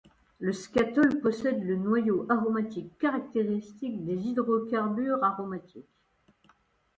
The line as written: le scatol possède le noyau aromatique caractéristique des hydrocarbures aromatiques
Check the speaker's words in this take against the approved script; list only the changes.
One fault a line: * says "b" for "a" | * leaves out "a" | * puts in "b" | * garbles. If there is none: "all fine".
all fine